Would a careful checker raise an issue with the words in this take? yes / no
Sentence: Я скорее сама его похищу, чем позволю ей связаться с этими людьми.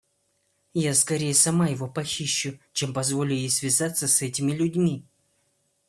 no